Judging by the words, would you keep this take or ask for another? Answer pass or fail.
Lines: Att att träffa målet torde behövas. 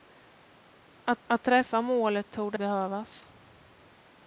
pass